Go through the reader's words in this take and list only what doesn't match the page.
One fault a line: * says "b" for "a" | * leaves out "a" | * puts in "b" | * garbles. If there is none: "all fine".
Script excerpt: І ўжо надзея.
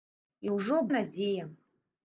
all fine